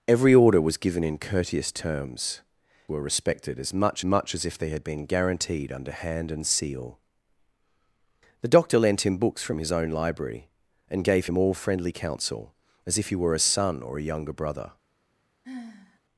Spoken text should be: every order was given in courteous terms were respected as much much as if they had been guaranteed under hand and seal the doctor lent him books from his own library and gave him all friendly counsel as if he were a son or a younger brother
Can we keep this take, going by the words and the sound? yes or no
no